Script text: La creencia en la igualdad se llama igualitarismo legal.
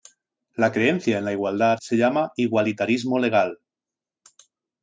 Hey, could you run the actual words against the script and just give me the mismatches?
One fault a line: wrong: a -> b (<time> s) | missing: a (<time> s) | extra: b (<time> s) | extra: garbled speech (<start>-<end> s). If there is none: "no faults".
no faults